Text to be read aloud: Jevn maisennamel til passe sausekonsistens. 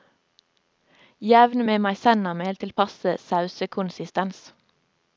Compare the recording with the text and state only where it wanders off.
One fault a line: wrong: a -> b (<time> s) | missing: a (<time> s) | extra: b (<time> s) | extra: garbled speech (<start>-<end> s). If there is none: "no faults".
extra: med (1.7 s)